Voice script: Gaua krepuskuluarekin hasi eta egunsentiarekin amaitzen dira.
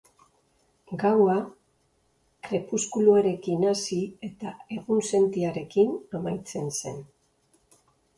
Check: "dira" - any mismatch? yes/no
yes